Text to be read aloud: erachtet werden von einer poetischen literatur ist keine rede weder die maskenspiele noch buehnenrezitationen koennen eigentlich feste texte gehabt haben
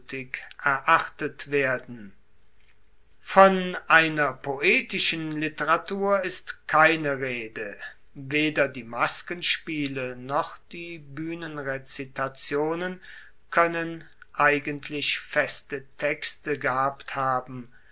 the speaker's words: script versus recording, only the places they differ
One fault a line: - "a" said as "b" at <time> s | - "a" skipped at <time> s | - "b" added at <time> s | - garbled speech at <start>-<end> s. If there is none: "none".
- "die" added at 10.7 s